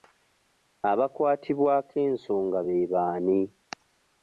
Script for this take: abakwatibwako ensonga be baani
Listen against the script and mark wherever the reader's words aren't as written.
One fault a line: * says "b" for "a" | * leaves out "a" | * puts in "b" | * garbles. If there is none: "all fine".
all fine